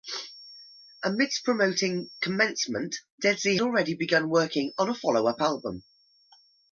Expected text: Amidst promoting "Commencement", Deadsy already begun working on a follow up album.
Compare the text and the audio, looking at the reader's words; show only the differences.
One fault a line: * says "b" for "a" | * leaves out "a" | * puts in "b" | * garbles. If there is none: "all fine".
all fine